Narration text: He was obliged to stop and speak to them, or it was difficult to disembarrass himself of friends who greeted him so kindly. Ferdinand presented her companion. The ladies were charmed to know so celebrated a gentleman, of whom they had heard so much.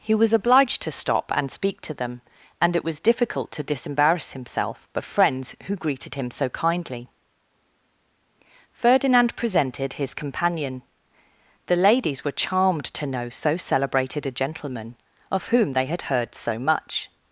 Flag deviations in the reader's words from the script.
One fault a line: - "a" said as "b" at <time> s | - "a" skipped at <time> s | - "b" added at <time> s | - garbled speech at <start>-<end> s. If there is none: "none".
- "or" said as "and" at 2.6 s
- "her" said as "his" at 9.9 s